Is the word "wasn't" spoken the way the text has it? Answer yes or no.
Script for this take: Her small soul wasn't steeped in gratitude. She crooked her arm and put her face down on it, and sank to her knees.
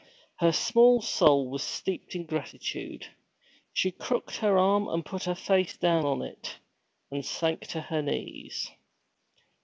no